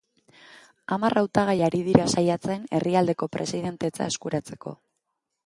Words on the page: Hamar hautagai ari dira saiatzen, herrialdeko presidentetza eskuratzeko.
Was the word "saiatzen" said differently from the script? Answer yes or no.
no